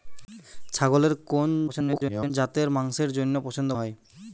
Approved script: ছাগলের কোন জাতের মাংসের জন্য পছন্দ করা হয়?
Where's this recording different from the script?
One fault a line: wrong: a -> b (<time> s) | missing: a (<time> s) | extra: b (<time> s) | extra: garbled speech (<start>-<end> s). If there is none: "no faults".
extra: garbled speech (1.7-2.3 s)
missing: করা (3.7 s)